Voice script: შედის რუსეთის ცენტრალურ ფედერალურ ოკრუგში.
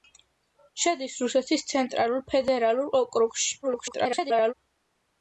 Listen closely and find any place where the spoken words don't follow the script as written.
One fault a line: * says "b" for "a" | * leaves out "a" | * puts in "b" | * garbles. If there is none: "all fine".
* garbles